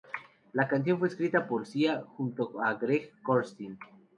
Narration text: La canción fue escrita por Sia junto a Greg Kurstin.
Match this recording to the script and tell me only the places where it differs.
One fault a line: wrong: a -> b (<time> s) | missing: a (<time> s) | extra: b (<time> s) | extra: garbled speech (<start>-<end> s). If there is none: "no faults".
no faults